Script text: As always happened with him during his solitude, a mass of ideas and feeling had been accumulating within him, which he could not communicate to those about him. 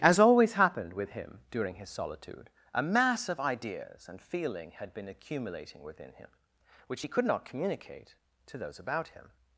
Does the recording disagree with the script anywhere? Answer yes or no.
no